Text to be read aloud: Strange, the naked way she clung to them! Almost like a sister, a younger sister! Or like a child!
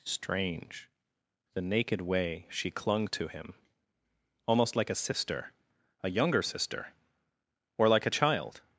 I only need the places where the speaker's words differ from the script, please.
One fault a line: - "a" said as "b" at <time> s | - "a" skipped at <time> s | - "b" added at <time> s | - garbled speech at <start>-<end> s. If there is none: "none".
- "them" said as "him" at 3.3 s